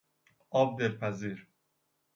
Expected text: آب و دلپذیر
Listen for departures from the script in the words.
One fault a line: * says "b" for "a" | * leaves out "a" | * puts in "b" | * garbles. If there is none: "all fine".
all fine